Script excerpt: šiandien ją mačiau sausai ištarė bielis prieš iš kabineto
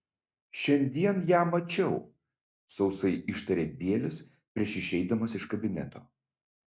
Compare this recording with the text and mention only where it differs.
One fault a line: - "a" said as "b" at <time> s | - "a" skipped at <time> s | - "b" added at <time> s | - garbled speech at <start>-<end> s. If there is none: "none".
- "išeidamas" added at 4.8 s